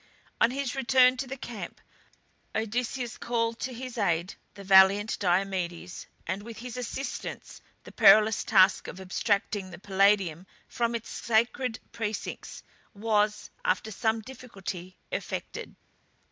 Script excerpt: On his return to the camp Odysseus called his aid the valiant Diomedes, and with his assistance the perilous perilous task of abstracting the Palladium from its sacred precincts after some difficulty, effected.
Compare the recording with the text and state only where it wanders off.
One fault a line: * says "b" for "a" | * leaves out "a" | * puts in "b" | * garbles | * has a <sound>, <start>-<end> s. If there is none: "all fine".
* puts in "to"
* leaves out "perilous"
* puts in "was"